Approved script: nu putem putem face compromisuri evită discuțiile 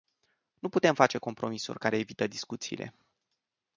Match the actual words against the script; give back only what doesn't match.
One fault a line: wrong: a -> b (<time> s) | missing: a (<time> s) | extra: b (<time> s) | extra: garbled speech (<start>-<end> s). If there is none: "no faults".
missing: putem (0.9 s)
extra: care (1.8 s)